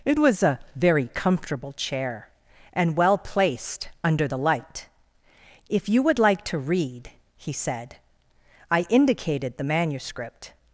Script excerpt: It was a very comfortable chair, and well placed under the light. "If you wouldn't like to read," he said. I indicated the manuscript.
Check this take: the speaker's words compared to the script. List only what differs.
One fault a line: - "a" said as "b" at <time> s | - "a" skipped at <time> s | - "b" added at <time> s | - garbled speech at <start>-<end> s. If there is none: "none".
- "wouldn't" said as "would" at 6.0 s